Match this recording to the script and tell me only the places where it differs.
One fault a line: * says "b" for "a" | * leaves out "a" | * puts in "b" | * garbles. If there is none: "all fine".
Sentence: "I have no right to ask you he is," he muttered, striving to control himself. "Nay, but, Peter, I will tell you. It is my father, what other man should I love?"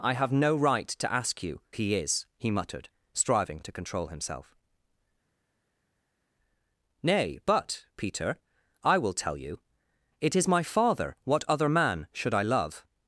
all fine